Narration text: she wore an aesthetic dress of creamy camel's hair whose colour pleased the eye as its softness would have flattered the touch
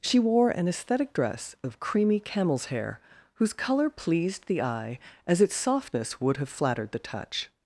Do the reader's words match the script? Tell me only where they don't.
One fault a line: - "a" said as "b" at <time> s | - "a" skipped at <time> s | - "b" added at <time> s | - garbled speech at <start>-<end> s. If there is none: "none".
none